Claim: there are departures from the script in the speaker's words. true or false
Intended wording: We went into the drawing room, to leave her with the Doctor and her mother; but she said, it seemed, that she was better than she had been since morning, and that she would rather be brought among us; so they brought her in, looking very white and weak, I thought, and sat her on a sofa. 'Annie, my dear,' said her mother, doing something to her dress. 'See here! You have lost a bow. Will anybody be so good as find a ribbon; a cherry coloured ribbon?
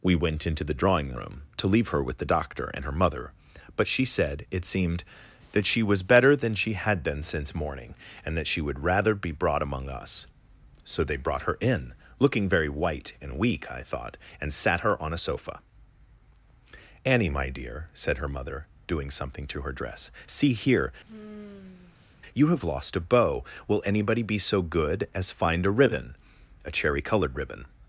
false